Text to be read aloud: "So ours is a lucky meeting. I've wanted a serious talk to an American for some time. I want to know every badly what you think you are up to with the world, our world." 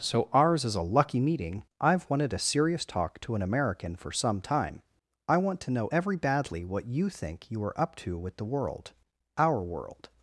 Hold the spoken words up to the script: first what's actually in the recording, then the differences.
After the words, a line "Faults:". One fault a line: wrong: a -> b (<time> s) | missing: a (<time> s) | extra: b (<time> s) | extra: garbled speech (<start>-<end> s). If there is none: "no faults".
"So ours is a lucky meeting. I've wanted a serious talk to an American for some time. I want to know every badly what you think you are up to with the world, our world."
Faults:
no faults